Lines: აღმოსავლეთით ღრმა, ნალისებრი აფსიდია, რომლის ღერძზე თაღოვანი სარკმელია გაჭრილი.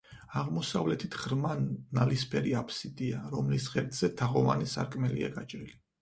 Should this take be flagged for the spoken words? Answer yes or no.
no